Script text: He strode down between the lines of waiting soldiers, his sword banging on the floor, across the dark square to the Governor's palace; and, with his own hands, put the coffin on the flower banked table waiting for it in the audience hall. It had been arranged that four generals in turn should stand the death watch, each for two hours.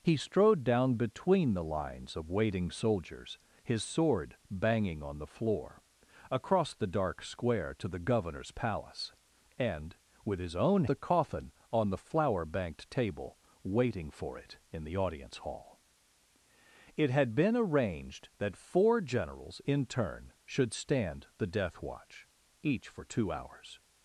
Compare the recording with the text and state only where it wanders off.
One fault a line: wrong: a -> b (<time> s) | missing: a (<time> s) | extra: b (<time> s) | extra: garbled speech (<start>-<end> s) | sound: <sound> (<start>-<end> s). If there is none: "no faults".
missing: hands put (10.9 s)